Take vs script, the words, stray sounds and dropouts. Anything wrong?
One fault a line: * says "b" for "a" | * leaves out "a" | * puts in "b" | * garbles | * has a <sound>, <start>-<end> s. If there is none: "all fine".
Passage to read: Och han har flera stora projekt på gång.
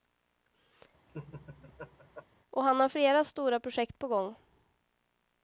* has a laugh, 1.1-2.3 s